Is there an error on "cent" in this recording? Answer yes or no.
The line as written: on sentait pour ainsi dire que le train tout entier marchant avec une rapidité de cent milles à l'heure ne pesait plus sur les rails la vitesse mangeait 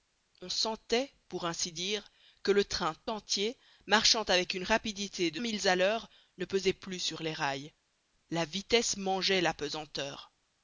yes